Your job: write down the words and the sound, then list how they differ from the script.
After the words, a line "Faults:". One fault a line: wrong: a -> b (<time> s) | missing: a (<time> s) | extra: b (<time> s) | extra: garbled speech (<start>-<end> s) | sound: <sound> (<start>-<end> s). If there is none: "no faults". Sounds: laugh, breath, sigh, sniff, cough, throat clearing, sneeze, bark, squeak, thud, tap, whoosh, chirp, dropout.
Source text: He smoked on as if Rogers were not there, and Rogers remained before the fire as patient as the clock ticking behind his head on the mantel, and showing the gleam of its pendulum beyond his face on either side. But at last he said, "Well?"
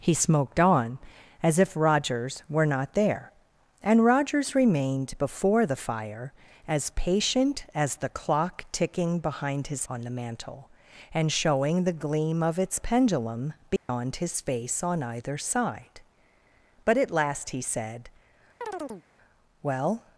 He smoked on as if Rogers were not there, and Rogers remained before the fire as patient as the clock ticking behind his on the mantel, and showing the gleam of its pendulum beyond his face on either side. But at last he said, "Well?"
Faults:
missing: head (9.8 s)
sound: dropout (13.8-13.9 s)
sound: chirp (18.6-19.1 s)